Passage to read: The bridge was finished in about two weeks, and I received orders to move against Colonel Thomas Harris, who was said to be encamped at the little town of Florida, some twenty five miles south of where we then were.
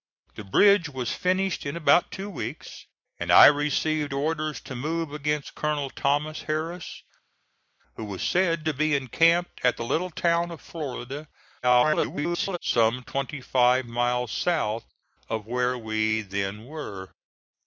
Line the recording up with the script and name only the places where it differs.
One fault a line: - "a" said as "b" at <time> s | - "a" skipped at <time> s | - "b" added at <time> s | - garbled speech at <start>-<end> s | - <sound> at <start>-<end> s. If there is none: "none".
- garbled speech at 11.6-12.6 s